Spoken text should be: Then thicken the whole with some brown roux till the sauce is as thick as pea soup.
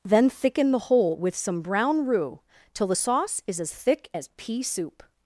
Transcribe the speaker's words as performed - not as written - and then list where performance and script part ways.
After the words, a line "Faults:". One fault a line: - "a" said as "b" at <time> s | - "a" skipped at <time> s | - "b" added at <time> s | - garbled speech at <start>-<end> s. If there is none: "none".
Then thicken the whole with some brown roux till the sauce is as thick as pea soup.
Faults:
none